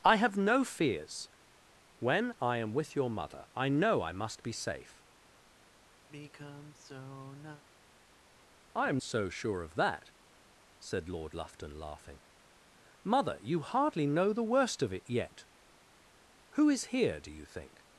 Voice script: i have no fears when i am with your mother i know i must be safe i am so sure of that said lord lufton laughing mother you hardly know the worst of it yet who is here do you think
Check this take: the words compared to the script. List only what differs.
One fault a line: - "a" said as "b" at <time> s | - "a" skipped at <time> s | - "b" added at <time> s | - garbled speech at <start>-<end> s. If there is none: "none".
none